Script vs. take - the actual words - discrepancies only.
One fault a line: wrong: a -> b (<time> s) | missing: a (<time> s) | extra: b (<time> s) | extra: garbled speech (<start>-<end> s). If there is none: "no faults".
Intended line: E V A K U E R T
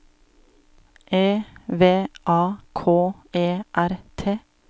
missing: U (3.1 s)